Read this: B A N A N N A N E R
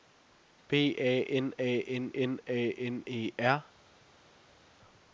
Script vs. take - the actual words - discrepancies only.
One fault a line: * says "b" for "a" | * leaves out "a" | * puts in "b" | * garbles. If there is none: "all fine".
all fine